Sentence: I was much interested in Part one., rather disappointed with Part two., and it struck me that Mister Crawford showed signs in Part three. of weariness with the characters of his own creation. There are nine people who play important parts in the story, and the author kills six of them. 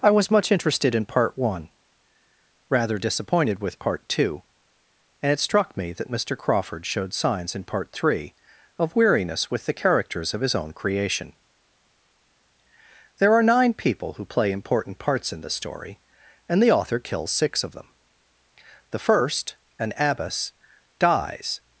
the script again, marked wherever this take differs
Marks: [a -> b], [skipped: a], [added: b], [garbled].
I was much interested in Part one., rather disappointed with Part two., and it struck me that Mister Crawford showed signs in Part three. of weariness with the characters of his own creation. There are nine people who play important parts in the story, and the author kills six of them. [added: The first an abbess dies]